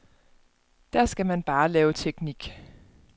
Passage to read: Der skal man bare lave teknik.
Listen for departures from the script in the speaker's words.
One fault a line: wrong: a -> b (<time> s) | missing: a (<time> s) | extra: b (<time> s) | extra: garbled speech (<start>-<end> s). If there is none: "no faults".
no faults